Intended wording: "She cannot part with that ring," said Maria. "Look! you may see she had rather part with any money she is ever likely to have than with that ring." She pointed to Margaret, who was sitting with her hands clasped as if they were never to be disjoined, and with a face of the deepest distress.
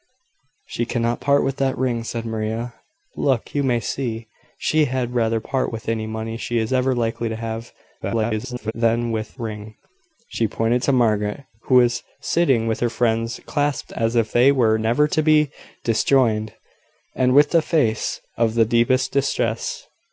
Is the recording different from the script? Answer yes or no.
yes